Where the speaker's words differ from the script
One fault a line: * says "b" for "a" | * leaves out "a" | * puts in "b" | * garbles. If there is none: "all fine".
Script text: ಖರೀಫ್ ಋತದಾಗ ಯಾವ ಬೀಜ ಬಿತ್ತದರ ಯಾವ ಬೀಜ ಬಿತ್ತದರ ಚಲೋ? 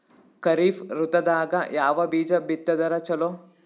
* leaves out "ಯಾವ ಬೀಜ ಬಿತ್ತದರ"